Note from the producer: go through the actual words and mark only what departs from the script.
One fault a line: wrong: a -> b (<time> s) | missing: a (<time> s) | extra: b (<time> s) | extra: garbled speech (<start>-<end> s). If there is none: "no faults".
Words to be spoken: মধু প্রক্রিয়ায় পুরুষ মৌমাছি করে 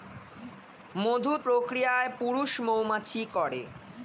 no faults